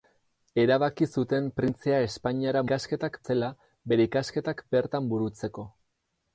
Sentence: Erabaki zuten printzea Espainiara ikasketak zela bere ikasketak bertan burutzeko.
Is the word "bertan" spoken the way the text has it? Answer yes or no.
yes